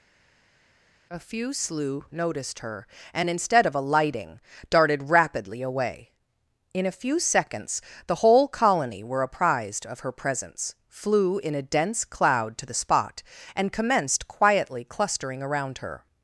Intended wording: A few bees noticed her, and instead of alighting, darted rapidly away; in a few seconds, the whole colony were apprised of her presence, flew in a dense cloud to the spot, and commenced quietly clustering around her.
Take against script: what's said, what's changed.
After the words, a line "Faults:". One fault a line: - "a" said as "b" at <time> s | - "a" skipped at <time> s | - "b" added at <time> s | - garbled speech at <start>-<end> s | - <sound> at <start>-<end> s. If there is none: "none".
A few slew noticed her, and instead of alighting, darted rapidly away; in a few seconds, the whole colony were apprised of her presence, flew in a dense cloud to the spot, and commenced quietly clustering around her.
Faults:
- "bees" said as "slew" at 1.5 s